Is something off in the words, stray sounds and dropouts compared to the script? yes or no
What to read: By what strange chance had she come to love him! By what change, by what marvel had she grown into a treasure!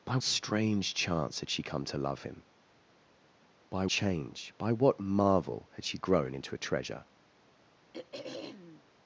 yes